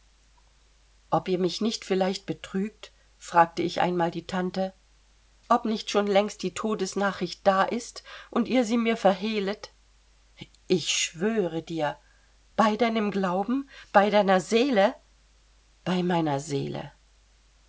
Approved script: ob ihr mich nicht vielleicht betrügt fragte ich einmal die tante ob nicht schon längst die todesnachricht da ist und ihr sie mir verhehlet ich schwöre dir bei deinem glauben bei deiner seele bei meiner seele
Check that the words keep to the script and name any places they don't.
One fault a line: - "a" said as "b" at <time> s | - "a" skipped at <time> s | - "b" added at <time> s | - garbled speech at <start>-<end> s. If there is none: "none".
none